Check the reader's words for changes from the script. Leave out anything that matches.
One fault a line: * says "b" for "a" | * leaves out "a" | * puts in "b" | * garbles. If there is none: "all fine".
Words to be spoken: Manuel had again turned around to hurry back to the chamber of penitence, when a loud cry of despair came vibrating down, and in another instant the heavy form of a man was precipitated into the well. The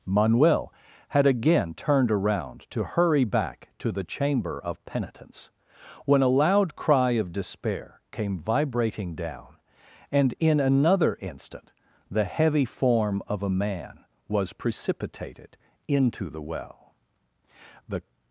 all fine